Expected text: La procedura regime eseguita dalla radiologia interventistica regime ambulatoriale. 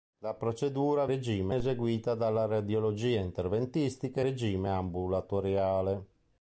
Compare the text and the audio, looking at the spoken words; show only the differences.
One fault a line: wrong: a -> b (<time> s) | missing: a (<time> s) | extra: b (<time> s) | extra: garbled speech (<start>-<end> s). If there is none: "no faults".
no faults